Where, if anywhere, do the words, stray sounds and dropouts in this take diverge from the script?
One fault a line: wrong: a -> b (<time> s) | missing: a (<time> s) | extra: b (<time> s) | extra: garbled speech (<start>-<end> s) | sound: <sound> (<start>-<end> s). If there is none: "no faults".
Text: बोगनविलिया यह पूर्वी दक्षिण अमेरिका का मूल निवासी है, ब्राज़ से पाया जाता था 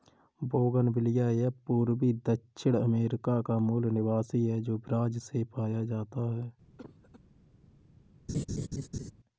extra: जो (4.6 s)
wrong: था -> है (6.3 s)
sound: cough (6.8-7.2 s)
sound: laugh (8.3-9.1 s)